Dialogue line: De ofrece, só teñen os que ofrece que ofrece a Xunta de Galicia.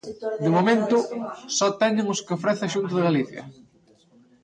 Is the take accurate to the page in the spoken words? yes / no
no